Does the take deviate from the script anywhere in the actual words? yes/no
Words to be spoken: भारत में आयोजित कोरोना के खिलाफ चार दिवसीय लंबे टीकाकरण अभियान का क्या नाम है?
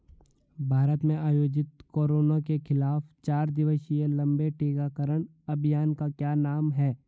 no